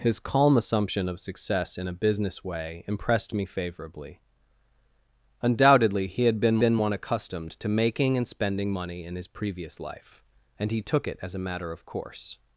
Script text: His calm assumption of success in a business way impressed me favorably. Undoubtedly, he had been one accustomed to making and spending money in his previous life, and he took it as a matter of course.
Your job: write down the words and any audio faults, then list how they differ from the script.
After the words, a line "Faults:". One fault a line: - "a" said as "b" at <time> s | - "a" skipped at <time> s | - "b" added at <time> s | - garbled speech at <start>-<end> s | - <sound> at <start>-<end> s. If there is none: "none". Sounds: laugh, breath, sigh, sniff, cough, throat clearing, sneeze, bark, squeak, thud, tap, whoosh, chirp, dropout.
His calm assumption of success in a business way impressed me favorably. Undoubtedly, he had been been one accustomed to making and spending money in his previous life, and he took it as a matter of course.
Faults:
- "been" added at 6.6 s